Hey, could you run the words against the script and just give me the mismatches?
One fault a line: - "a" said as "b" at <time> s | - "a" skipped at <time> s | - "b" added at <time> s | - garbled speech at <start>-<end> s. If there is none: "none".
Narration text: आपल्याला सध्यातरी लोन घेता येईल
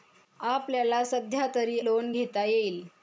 none